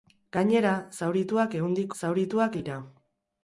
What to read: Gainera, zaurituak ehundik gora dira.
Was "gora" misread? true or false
true